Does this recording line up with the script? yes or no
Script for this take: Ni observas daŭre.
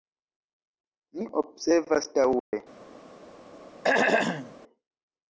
yes